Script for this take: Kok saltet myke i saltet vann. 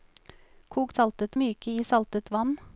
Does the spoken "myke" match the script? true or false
true